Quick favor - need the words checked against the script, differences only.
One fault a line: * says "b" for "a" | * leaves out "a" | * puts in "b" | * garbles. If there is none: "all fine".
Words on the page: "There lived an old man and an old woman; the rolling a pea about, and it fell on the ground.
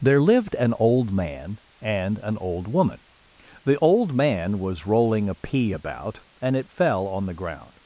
* puts in "old man was"